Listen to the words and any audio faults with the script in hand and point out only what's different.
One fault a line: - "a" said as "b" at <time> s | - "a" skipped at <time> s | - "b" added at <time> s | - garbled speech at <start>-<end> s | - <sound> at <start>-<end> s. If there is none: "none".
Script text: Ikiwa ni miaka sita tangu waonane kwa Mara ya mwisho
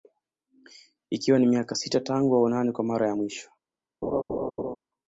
- laugh at 4.0-4.8 s